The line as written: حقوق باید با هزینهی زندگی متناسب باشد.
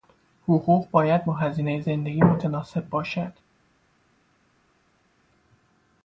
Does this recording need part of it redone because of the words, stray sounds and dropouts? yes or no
no